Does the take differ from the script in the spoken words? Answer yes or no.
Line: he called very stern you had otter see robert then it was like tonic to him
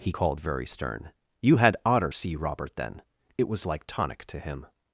no